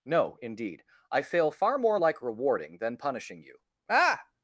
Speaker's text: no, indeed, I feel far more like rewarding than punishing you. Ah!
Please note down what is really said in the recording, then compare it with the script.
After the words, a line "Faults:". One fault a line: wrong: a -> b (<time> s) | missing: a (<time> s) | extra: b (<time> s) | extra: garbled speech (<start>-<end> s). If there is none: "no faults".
no, indeed, I fail far more like rewarding than punishing you. Ah!
Faults:
wrong: feel -> fail (1.2 s)